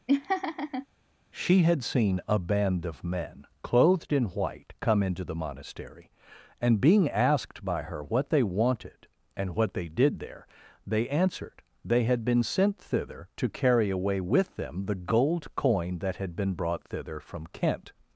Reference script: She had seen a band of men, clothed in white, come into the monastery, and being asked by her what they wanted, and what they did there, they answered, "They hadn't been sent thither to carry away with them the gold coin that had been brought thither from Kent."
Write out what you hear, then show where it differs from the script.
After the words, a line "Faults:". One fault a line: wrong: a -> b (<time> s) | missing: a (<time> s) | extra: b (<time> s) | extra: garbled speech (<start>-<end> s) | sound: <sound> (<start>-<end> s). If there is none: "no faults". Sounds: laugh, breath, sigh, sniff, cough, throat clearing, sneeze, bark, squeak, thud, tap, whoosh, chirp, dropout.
She had seen a band of men, clothed in white, come into the monastery, and being asked by her what they wanted, and what they did there, they answered, "They had been sent thither to carry away with them the gold coin that had been brought thither from Kent."
Faults:
sound: laugh (0.1-0.9 s)
wrong: hadn't -> had (12.0 s)